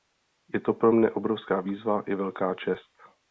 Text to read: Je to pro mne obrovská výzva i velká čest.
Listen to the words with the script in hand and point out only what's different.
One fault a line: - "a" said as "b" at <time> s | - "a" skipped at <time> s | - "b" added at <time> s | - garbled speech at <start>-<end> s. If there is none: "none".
none